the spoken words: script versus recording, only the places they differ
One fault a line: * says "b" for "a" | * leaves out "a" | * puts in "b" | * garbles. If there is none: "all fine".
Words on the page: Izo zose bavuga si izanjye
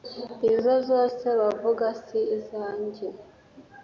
all fine